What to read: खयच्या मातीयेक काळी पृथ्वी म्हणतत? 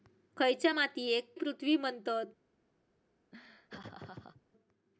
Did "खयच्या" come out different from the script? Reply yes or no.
no